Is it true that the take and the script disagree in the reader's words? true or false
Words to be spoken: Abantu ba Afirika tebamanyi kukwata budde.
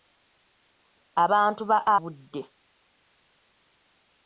true